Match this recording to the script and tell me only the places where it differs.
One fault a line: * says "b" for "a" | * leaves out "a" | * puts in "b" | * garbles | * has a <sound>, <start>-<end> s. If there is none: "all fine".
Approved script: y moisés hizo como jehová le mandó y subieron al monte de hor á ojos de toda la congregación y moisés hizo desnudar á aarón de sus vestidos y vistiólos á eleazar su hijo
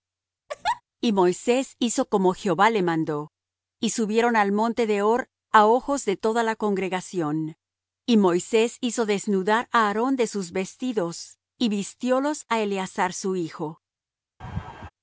* has a laugh, 0.5-0.8 s
* has a laugh, 14.4-14.9 s